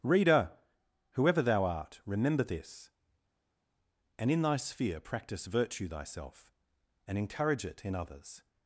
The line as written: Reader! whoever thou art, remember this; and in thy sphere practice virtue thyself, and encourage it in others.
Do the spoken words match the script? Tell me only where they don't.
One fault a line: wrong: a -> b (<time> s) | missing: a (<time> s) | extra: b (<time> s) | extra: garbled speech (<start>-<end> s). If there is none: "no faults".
no faults